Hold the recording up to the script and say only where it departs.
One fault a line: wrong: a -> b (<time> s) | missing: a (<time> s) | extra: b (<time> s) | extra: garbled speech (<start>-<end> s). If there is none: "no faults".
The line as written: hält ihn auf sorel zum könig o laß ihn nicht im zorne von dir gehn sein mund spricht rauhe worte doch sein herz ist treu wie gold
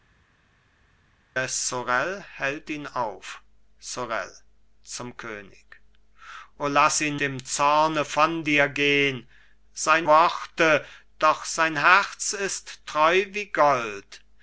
missing: nicht (7.2 s)
missing: mund spricht rauhe (10.1 s)